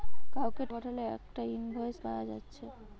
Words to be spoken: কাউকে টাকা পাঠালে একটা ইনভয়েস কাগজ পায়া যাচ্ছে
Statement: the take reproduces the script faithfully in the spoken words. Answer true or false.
false